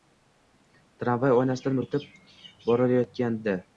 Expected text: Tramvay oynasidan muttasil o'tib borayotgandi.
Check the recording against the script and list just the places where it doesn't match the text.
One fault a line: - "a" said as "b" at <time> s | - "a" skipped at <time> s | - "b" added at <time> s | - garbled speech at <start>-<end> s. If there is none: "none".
- "muttasil" skipped at 1.8 s